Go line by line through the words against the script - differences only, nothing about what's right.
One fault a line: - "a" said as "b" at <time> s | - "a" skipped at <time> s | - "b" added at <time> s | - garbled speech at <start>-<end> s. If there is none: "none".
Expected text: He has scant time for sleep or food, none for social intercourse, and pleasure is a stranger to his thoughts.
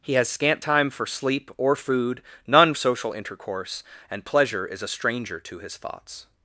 - "for" skipped at 2.7 s